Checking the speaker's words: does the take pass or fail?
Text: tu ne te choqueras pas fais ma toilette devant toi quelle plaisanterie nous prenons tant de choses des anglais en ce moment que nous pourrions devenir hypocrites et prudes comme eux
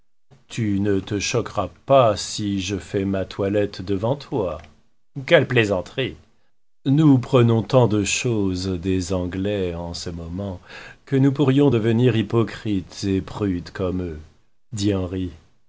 fail